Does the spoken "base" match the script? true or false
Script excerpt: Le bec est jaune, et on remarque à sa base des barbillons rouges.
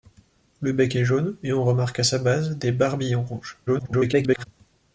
true